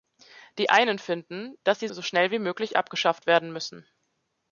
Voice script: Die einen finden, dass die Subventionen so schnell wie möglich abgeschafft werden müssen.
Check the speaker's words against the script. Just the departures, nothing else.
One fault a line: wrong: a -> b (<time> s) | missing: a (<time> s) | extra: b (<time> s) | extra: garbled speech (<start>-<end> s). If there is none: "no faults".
missing: Subventionen (1.9 s)